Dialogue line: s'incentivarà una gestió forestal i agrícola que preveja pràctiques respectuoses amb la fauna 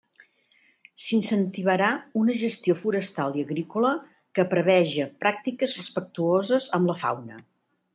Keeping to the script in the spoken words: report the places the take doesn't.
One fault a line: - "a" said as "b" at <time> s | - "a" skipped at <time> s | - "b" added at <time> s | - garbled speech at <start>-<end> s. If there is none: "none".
none